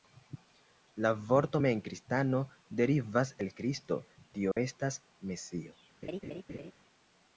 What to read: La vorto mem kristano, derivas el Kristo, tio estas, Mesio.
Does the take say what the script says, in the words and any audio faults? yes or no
no